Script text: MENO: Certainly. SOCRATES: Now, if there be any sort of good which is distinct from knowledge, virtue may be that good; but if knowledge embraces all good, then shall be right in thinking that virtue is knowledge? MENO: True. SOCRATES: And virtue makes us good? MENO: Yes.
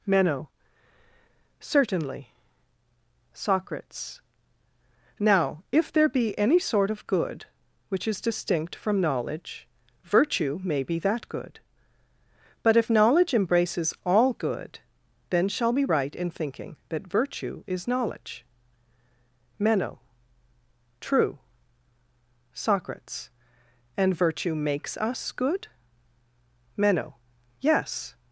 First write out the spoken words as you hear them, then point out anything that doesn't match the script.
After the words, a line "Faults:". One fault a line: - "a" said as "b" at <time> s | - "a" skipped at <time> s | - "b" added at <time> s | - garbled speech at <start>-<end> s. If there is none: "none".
MENO: Certainly. SOCRATES: Now, if there be any sort of good which is distinct from knowledge, virtue may be that good; but if knowledge embraces all good, then shall be right in thinking that virtue is knowledge? MENO: True. SOCRATES: And virtue makes us good? MENO: Yes.
Faults:
none